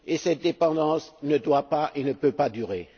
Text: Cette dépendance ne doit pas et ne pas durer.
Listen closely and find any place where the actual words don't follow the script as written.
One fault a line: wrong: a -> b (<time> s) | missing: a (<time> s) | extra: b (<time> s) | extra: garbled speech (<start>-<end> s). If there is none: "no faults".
extra: peut (2.1 s)